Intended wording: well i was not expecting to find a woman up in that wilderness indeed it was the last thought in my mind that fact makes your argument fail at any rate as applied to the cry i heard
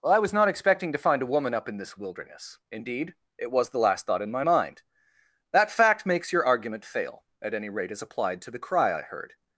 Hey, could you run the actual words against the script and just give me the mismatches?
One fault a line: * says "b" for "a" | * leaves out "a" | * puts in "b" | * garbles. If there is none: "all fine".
* says "this" for "that"